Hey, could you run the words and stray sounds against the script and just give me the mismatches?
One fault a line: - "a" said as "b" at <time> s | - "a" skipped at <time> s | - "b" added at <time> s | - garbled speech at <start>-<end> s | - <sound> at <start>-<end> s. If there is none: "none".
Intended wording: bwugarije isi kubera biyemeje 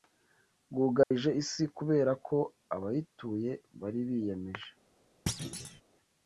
- dropout at 1.0-1.1 s
- "ko abayituye bari" added at 2.3 s
- thud at 5.3-5.8 s